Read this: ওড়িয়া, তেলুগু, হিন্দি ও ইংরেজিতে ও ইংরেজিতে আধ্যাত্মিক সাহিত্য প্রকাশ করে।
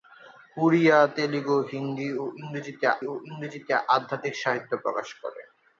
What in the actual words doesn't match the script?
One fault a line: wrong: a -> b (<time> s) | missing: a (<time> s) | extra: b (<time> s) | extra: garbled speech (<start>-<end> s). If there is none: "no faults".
no faults